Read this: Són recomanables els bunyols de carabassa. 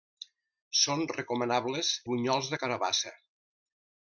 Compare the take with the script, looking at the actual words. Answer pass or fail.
fail